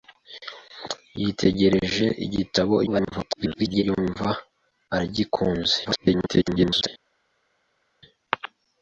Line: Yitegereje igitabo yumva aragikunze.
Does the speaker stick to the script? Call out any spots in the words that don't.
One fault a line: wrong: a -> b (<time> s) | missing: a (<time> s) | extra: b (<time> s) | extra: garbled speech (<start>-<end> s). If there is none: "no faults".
extra: garbled speech (2.9-3.8 s)
extra: garbled speech (5.8-6.9 s)